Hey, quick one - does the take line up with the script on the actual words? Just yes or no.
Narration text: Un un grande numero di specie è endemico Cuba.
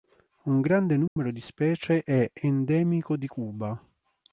no